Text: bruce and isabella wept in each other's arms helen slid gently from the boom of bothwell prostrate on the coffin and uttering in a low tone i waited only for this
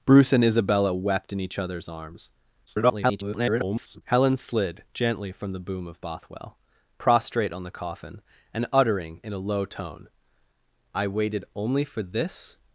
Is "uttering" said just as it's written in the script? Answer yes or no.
yes